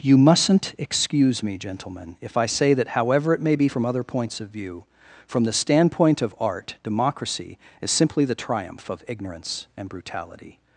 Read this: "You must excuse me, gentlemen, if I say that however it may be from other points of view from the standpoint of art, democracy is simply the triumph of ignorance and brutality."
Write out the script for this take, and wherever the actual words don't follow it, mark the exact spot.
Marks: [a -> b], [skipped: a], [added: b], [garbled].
"You [must -> mustn't] excuse me, gentlemen, if I say that however it may be from other points of view from the standpoint of art, democracy is simply the triumph of ignorance and brutality."